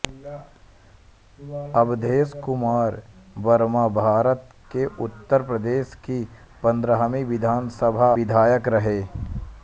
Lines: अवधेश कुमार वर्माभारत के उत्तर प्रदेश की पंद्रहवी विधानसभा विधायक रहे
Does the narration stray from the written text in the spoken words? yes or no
no